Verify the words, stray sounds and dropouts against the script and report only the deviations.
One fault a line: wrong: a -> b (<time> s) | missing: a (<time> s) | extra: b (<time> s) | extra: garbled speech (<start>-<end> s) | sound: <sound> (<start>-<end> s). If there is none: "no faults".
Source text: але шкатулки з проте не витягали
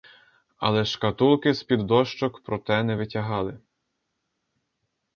extra: під дощок (1.6 s)